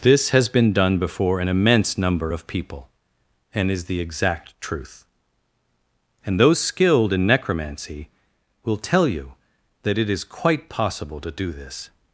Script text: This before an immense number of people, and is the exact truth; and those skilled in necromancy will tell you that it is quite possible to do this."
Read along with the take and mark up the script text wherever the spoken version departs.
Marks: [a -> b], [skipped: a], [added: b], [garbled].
This [added: has been done] before an immense number of people, and is the exact truth; and those skilled in necromancy will tell you that it is quite possible to do this."